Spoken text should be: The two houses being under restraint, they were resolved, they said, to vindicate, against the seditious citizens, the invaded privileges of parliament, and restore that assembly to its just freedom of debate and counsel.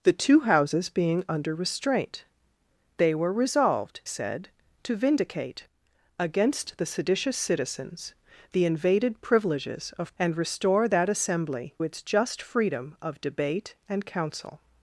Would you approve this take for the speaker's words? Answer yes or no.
no